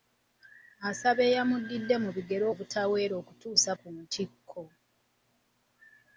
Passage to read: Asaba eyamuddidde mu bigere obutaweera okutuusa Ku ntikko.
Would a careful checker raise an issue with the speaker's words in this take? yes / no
no